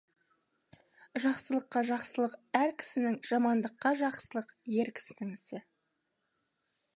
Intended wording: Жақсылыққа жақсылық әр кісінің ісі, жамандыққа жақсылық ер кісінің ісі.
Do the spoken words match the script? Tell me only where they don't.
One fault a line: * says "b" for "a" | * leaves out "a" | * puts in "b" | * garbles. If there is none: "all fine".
* leaves out "ісі"